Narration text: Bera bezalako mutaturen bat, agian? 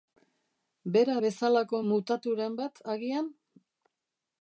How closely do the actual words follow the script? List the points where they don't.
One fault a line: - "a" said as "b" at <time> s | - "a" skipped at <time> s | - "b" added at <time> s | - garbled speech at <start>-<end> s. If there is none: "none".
none